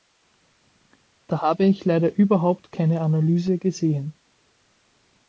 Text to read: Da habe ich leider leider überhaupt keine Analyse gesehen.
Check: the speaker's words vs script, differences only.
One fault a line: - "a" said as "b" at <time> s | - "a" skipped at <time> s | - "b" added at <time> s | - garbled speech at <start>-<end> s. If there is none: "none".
- "leider" skipped at 2.1 s